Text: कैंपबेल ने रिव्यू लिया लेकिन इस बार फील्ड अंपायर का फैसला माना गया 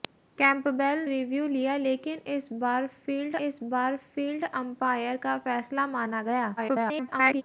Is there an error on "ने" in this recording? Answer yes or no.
yes